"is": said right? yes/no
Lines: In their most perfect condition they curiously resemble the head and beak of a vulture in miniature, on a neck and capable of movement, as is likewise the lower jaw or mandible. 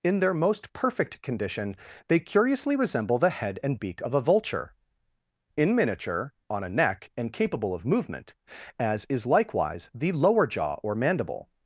yes